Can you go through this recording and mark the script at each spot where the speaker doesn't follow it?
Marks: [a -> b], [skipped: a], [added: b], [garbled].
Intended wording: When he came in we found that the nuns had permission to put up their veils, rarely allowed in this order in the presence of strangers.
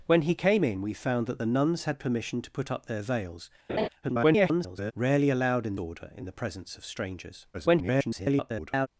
When he came in we found that the nuns had permission to put up their veils, [garbled] rarely allowed in [skipped: this] order in the presence of strangers. [garbled]